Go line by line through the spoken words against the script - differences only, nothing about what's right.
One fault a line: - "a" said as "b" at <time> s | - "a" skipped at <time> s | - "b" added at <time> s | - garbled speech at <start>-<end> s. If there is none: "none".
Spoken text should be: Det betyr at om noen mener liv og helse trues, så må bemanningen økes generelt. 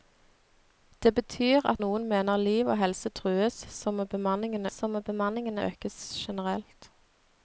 - "om" skipped at 1.8 s
- "så må bemanningen" added at 4.8 s